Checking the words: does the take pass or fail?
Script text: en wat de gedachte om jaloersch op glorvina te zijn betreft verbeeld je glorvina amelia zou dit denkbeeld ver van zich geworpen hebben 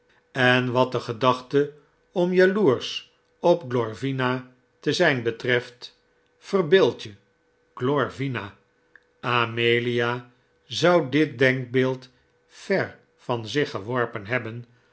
pass